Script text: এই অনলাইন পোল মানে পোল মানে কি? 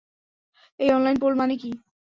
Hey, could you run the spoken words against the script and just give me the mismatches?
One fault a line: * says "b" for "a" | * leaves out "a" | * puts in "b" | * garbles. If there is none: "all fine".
* leaves out "পোল মানে"